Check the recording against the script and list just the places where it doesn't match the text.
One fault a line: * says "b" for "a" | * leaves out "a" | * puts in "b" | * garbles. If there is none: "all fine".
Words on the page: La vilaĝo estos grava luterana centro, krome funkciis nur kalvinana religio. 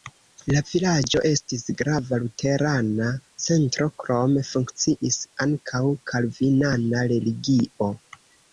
* says "estis" for "estos"
* says "ankaŭ" for "nur"